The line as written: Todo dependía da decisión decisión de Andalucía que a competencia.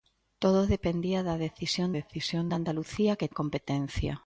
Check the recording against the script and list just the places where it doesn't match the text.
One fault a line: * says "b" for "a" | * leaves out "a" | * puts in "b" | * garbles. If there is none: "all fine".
all fine